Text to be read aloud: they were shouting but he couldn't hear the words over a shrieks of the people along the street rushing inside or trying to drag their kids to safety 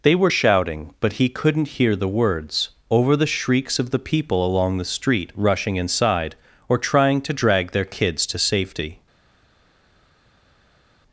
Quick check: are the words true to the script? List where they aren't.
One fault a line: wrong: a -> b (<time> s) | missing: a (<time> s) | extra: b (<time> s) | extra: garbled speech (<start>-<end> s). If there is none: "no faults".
wrong: a -> the (3.2 s)